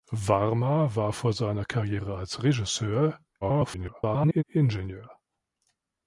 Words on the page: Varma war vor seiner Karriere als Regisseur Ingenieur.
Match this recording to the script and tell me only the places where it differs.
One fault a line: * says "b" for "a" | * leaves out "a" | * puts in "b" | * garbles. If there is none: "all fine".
* garbles